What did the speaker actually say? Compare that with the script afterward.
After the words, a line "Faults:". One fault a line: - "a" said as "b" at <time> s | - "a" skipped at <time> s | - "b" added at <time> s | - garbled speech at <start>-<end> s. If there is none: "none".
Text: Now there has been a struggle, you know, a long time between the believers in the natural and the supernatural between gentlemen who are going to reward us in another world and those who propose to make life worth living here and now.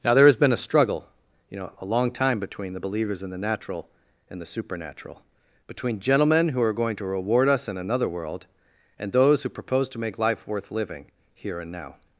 Now there has been a struggle, you know, a long time between the believers in the natural and the supernatural between gentlemen who are going to reward us in another world and those who propose to make life worth living here and now.
Faults:
none